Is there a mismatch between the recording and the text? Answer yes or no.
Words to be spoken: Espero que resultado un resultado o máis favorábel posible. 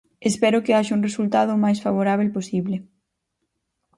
yes